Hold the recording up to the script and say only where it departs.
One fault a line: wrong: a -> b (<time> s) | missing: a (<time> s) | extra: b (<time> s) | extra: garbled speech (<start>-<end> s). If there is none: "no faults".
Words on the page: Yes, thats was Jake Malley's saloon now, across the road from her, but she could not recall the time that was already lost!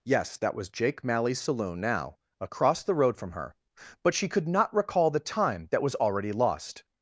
wrong: thats -> that (0.4 s)